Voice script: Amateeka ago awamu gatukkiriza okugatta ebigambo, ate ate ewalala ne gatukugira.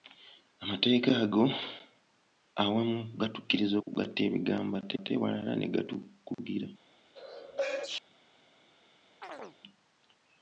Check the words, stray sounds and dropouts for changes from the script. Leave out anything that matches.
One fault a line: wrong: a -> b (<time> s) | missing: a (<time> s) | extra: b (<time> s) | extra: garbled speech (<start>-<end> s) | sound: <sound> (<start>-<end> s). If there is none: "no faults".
sound: sneeze (7.1-8.0 s)
sound: chirp (9.2-9.6 s)